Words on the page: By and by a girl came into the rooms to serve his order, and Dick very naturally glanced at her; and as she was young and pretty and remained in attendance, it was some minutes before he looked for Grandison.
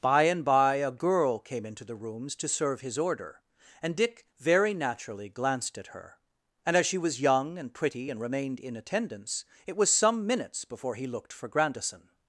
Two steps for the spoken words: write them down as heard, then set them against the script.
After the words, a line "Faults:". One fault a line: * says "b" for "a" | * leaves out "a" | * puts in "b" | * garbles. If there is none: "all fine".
By and by a girl came into the rooms to serve his order, and Dick very naturally glanced at her; and as she was young and pretty and remained in attendance, it was some minutes before he looked for Grandison.
Faults:
all fine